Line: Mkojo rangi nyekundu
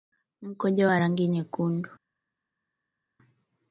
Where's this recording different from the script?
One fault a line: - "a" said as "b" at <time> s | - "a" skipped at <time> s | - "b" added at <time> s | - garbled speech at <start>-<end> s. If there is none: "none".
- "wa" added at 0.9 s